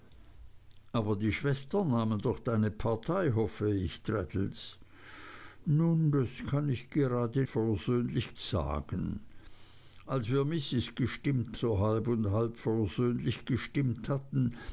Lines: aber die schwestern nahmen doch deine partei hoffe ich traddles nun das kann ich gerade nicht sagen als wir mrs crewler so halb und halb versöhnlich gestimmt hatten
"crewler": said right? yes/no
no